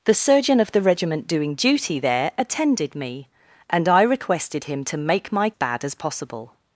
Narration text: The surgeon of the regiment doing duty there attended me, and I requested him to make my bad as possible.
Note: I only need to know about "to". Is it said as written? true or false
true